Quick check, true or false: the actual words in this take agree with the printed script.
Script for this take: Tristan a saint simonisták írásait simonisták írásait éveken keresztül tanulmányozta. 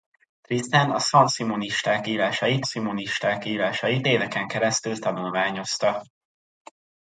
true